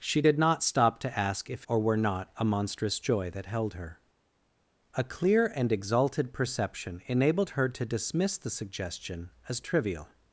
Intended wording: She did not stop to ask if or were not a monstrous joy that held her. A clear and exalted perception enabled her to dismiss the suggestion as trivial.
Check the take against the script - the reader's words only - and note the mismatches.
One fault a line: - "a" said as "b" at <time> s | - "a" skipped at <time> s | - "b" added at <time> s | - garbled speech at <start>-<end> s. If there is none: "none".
none